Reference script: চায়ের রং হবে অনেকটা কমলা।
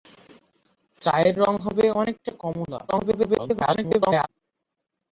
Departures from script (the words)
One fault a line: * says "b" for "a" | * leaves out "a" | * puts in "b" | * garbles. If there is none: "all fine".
* garbles